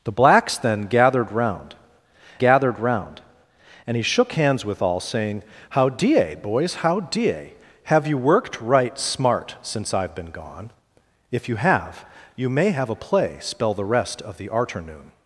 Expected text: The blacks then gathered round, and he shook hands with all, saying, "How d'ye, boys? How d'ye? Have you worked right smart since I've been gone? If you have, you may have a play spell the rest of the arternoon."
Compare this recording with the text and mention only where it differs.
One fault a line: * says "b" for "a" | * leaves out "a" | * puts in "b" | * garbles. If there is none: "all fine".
* puts in "gathered round"